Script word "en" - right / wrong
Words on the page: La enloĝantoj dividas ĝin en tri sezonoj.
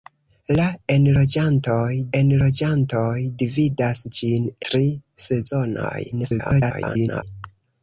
wrong